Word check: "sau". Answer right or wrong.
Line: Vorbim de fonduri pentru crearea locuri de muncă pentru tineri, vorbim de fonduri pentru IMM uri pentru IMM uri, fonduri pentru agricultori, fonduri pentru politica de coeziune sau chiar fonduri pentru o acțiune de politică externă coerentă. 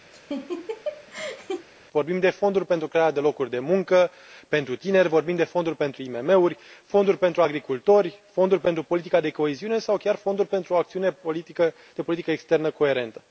right